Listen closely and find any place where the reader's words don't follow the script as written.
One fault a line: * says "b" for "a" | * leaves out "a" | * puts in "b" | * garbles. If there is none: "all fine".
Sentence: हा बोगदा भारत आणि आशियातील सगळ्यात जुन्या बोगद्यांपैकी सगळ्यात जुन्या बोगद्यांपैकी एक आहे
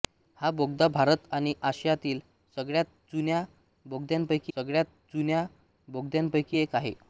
all fine